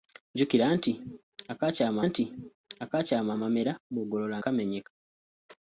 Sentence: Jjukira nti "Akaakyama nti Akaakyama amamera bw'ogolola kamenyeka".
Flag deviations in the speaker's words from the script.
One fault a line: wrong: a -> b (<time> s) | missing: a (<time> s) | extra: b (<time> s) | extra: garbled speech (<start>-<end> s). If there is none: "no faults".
no faults